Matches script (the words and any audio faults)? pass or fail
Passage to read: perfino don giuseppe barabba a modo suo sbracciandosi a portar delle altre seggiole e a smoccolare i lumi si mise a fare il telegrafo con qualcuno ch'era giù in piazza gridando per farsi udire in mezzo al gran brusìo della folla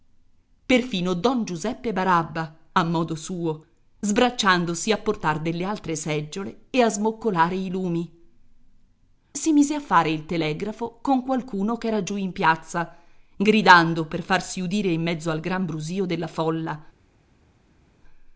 pass